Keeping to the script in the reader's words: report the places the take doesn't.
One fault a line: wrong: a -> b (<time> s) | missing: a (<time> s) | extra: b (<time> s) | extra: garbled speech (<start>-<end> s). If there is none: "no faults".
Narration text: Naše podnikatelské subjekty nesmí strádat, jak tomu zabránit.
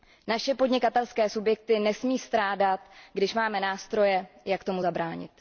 extra: když máme nástroje (3.1 s)